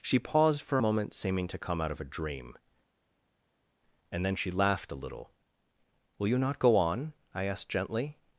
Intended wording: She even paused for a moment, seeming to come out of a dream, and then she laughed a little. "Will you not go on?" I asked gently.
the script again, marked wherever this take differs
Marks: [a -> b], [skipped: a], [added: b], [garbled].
She [skipped: even] paused for a moment, seeming to come out of a dream, and then she laughed a little. "Will you not go on?" I asked gently.